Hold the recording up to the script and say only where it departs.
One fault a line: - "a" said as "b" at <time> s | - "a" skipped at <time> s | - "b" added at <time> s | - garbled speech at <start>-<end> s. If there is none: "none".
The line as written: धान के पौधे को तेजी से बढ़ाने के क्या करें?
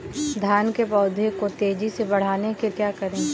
none